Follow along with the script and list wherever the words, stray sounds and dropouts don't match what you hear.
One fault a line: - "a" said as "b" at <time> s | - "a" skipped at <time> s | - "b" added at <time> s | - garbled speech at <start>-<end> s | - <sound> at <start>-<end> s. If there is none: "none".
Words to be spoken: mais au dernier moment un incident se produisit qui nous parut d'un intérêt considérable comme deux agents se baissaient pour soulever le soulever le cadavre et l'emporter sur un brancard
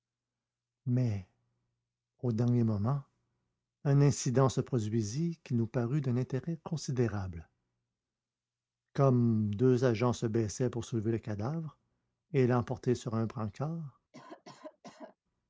- "soulever le" skipped at 11.2 s
- cough at 14.1-15.2 s